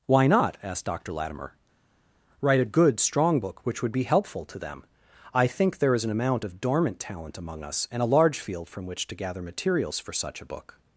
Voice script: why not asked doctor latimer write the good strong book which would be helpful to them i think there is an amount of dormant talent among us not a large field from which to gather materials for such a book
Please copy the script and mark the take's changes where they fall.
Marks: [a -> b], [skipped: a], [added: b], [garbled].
why not asked doctor latimer write [the -> a] good strong book which would be helpful to them i think there is an amount of dormant talent among us [not -> and] a large field from which to gather materials for such a book